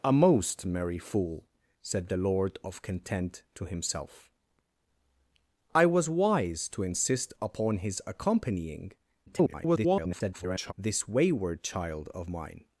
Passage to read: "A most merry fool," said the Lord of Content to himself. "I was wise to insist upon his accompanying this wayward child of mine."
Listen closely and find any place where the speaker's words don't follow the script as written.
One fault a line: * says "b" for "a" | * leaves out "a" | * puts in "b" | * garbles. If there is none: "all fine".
* garbles